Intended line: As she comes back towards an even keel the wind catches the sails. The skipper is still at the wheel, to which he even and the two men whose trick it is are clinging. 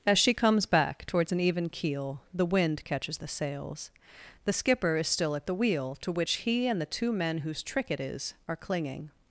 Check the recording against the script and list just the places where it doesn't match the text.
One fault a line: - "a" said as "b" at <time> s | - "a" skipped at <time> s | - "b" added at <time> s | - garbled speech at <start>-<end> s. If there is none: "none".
- "even" skipped at 6.7 s